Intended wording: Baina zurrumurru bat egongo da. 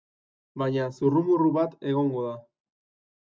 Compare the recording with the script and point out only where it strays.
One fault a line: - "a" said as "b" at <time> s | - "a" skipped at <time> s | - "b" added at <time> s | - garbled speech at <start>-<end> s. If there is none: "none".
none